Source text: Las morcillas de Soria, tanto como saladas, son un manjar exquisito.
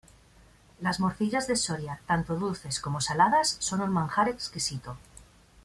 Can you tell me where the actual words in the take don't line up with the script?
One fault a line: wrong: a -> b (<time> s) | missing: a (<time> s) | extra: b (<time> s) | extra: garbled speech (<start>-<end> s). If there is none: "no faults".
extra: dulces (2.4 s)